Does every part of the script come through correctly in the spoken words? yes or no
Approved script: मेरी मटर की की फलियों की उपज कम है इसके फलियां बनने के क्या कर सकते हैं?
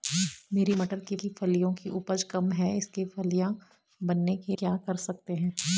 yes